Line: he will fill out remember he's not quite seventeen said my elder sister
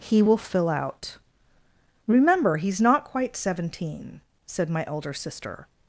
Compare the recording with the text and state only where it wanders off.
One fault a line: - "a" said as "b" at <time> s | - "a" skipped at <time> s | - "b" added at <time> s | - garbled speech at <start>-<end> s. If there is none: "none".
none